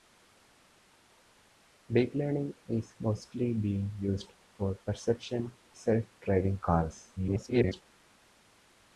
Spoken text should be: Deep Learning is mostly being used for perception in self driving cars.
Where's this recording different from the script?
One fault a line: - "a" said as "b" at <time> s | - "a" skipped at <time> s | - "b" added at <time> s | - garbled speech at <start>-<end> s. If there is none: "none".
- "in" skipped at 5.5 s
- garbled speech at 7.2-7.8 s